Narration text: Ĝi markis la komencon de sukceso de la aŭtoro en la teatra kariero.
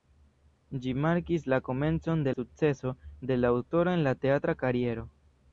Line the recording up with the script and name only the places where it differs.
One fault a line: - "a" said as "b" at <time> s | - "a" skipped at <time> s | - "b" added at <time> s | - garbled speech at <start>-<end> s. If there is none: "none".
none